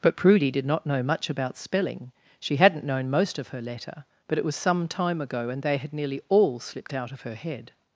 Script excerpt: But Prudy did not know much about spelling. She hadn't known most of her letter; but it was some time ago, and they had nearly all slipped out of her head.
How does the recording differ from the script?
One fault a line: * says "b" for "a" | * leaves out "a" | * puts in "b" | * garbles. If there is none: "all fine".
all fine